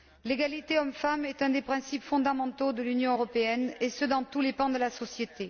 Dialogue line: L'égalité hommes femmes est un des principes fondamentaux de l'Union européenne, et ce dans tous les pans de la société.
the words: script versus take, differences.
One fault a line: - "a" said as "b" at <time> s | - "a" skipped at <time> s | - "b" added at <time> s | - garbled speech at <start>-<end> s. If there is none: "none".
none